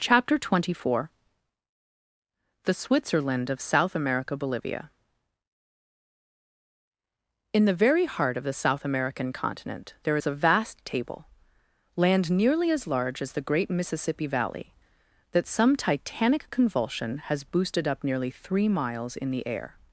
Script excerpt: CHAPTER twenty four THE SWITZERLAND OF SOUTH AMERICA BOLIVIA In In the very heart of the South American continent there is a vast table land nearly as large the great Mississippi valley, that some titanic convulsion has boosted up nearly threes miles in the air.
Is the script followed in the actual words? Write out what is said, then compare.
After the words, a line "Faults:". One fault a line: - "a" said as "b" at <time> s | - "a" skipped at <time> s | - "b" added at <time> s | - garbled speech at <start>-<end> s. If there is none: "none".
CHAPTER twenty four THE SWITZERLAND OF SOUTH AMERICA BOLIVIA In the very heart of the South American continent there is a vast table land nearly as large as the great Mississippi valley, that some titanic convulsion has boosted up nearly three miles in the air.
Faults:
- "In" skipped at 7.7 s
- "as" added at 13.2 s
- "threes" said as "three" at 18.3 s